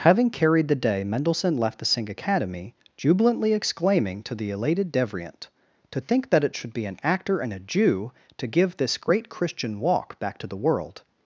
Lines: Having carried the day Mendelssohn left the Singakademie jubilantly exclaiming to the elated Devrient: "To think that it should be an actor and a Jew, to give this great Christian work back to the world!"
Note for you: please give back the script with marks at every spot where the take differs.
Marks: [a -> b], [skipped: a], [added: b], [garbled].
Having carried the day Mendelssohn left the Singakademie jubilantly exclaiming to the elated Devrient: "To think that it should be an actor and a Jew, to give this great Christian [work -> walk] back to the world!"